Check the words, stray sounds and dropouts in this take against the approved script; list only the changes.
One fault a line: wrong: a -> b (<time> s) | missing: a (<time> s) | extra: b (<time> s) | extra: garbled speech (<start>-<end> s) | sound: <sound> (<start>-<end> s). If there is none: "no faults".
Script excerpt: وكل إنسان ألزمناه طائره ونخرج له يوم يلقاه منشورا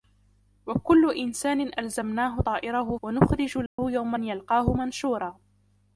sound: dropout (3.7-3.8 s)